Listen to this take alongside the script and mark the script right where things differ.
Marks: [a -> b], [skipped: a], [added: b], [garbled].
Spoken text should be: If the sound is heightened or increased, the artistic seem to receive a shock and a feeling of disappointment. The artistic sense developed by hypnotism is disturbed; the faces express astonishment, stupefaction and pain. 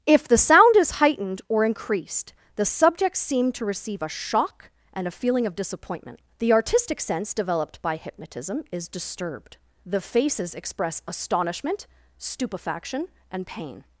If the sound is heightened or increased, the [artistic -> subjects] seem to receive a shock and a feeling of disappointment. The artistic sense developed by hypnotism is disturbed; the faces express astonishment, stupefaction and pain.